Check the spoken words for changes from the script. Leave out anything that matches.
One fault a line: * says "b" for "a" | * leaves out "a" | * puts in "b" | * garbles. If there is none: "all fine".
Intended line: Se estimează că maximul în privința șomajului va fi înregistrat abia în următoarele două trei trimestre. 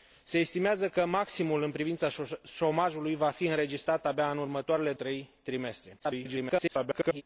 * leaves out "două"
* garbles